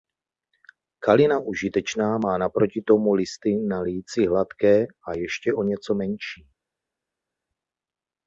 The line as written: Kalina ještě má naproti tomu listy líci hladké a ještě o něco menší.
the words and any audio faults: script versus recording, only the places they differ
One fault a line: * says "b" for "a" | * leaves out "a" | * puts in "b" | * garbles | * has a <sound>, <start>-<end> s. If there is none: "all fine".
* says "užitečná" for "ještě"
* puts in "na"